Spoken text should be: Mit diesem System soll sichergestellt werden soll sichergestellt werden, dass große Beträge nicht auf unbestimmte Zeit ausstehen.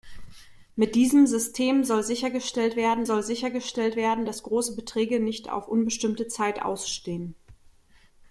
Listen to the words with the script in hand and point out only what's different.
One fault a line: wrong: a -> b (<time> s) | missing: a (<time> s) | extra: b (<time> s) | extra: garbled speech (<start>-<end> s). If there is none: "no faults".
no faults